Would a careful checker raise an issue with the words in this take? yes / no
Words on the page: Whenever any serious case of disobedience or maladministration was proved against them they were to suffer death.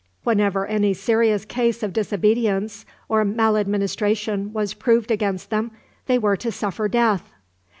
no